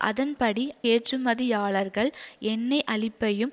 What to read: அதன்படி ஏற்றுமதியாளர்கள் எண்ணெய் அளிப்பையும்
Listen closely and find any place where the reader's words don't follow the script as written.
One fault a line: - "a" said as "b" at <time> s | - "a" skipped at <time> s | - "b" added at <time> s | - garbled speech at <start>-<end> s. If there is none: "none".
none